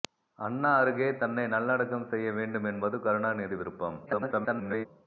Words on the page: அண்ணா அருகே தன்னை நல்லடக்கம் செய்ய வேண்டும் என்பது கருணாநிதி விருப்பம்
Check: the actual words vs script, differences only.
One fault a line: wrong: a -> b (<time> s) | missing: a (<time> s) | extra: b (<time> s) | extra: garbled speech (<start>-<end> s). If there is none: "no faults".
extra: garbled speech (4.1-4.9 s)